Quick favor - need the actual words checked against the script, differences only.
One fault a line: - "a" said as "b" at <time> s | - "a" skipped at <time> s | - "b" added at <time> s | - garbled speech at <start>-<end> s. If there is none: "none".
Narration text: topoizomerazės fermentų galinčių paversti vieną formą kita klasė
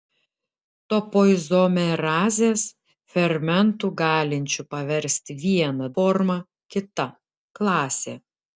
none